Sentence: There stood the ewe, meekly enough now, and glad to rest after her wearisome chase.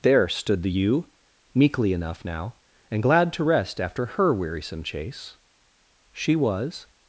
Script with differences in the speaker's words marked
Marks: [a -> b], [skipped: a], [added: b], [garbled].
There stood the ewe, meekly enough now, and glad to rest after her wearisome chase. [added: She was]